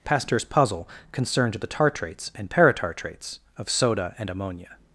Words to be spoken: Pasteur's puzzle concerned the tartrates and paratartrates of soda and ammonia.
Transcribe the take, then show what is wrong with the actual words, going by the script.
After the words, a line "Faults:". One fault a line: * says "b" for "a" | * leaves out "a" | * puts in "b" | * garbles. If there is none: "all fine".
Pasteur's puzzle concerned the tartrates and paratartrates of soda and ammonia.
Faults:
all fine